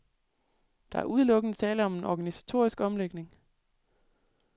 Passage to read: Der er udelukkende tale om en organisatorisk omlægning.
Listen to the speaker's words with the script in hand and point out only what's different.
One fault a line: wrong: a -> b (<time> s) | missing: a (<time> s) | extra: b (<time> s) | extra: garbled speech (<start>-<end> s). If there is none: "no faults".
no faults